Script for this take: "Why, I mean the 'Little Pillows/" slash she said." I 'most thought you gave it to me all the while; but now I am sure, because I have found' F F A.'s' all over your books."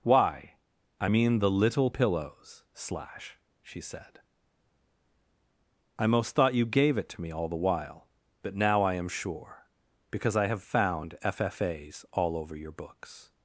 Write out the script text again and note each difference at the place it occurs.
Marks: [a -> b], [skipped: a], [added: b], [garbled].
"Why, I mean the 'Little Pillows/" slash she said." I 'most thought you gave it to me all the while; but now I am sure, because I have found' F F A.'s' all over your books."